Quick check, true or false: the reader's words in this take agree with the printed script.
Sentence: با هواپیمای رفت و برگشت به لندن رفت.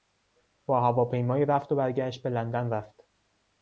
true